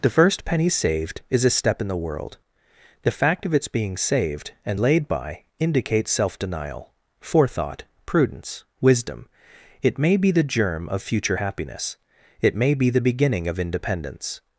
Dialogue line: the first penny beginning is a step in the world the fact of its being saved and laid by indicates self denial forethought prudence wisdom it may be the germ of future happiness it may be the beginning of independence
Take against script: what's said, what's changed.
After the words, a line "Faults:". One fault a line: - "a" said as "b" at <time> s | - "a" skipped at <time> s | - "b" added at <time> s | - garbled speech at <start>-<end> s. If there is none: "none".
the first penny saved is a step in the world the fact of its being saved and laid by indicates self denial forethought prudence wisdom it may be the germ of future happiness it may be the beginning of independence
Faults:
- "beginning" said as "saved" at 0.7 s